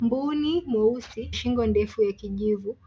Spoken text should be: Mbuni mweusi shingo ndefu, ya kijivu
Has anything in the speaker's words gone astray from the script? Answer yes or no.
no